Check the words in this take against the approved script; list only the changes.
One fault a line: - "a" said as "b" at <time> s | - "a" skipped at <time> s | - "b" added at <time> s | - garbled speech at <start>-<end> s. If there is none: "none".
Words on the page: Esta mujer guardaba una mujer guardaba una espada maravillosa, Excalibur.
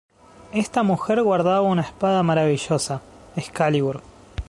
- "mujer guardaba una" skipped at 1.8 s